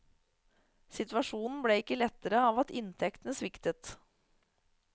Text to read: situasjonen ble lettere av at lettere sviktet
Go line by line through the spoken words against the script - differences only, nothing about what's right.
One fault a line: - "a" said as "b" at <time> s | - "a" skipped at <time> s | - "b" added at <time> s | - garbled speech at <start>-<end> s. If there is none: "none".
- "ikke" added at 1.8 s
- "lettere" said as "inntektene" at 2.8 s